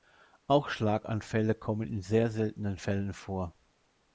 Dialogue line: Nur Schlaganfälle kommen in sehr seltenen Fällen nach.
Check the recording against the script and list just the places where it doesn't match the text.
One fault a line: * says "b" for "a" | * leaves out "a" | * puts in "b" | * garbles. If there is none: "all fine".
* says "Auch" for "Nur"
* says "vor" for "nach"